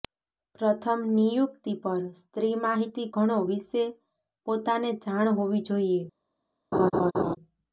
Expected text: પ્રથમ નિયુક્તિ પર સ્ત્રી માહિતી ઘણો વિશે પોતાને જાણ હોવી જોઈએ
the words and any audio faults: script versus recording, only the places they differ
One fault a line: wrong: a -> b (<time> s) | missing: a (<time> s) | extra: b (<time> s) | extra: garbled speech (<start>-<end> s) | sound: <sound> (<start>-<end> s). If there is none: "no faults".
sound: laugh (6.7-7.4 s)